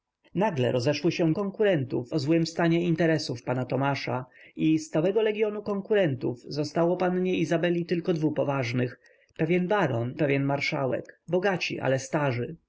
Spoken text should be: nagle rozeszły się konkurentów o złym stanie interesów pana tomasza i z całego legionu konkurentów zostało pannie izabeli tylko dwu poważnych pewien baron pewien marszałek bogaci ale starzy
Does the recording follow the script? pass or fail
pass